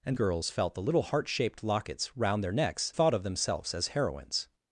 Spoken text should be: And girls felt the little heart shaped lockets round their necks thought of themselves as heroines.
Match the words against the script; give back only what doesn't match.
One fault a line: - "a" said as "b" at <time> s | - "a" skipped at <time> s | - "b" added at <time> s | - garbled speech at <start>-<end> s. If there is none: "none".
none